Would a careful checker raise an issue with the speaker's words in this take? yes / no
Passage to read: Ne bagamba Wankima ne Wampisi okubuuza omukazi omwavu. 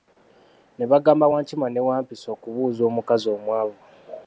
no